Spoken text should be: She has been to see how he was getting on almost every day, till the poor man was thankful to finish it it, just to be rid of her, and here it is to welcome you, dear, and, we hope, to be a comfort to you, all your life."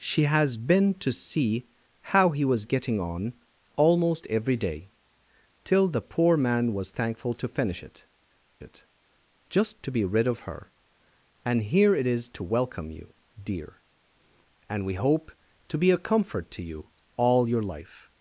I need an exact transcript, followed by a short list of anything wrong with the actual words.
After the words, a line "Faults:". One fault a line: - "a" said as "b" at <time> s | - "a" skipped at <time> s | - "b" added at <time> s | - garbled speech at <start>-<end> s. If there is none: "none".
She has been to see how he was getting on almost every day, till the poor man was thankful to finish it it, just to be rid of her, and here it is to welcome you, dear, and, we hope, to be a comfort to you, all your life."
Faults:
none